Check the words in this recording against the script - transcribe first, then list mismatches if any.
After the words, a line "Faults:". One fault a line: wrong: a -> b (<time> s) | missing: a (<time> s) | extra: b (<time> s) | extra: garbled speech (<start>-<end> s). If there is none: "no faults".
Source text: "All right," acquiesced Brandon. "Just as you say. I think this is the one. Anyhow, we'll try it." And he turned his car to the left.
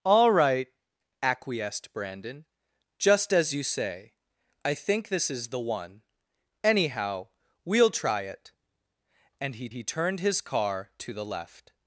"All right," acquiesced Brandon. "Just as you say. I think this is the one. Anyhow, we'll try it." And he he turned his car to the left.
Faults:
extra: he (9.7 s)